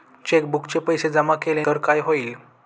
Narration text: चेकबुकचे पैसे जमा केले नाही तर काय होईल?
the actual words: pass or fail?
fail